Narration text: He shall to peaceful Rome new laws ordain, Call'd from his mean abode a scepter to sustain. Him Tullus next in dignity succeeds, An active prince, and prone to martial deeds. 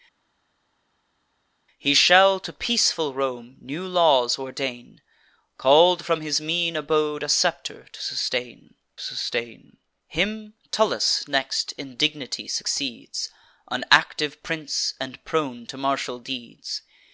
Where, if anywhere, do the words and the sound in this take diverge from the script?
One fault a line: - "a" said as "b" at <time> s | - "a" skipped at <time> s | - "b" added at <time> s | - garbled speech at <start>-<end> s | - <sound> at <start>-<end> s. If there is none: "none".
- "sustain" added at 9.0 s